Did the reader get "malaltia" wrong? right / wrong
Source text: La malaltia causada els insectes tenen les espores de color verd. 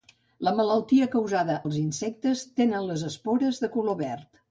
right